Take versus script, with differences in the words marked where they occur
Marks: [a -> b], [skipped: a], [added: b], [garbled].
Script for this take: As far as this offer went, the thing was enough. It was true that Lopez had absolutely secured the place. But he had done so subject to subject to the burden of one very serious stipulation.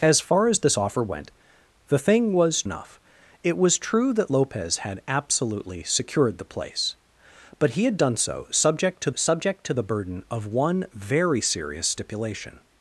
As far as this offer went, the thing was enough. It was true that Lopez had absolutely secured the place. But he had done so subject to subject to the burden of one very serious stipulation.